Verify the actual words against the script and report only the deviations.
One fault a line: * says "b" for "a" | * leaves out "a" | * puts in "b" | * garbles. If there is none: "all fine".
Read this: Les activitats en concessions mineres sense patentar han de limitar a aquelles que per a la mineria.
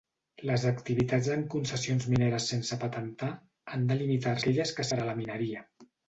all fine